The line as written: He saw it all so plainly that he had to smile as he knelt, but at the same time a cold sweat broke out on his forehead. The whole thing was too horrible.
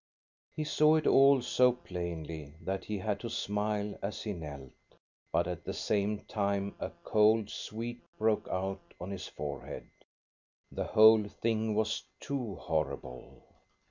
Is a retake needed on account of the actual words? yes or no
no